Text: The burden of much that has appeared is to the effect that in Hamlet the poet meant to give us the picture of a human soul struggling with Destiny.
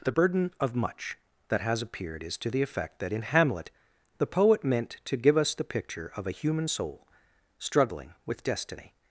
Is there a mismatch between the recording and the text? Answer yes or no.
no